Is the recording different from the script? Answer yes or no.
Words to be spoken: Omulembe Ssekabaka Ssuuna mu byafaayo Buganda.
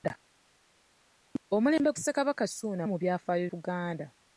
no